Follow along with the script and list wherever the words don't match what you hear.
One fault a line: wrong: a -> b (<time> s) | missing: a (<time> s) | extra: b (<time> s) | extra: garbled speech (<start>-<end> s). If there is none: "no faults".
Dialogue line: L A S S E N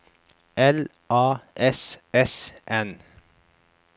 missing: E (2.5 s)